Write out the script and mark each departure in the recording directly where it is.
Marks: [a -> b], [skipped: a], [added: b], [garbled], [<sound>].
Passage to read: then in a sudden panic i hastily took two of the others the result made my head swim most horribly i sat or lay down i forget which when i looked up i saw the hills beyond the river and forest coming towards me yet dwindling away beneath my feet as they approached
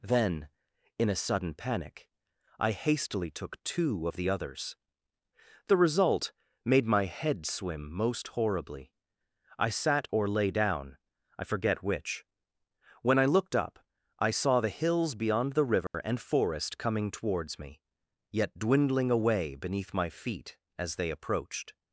then in a sudden panic i hastily took two of the others the result made my head swim most horribly i sat or lay down i forget which when i looked up i saw the hills beyond the river [dropout] and forest coming towards me yet dwindling away beneath my feet as they approached